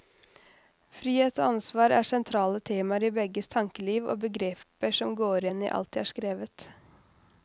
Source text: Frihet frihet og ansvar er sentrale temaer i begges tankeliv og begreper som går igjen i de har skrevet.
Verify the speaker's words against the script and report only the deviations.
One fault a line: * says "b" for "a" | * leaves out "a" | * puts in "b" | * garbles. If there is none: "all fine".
* leaves out "frihet"
* puts in "alt"